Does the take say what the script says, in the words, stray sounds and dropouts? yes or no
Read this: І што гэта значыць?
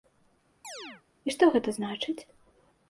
no